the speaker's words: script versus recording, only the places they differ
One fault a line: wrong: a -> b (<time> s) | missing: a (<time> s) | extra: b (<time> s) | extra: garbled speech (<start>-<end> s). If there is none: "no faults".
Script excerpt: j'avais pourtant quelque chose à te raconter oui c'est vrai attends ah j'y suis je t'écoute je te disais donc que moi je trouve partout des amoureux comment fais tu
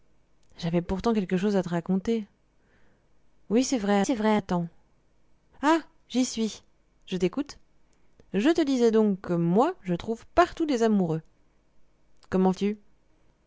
extra: c'est vrai (4.0 s)
missing: fais (12.5 s)